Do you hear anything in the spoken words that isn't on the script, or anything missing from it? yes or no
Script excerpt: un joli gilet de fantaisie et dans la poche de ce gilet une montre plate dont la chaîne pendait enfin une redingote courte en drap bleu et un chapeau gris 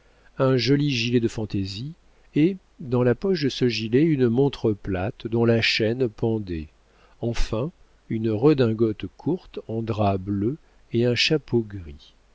no